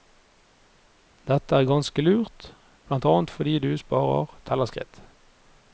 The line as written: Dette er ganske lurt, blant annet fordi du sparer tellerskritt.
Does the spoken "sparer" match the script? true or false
true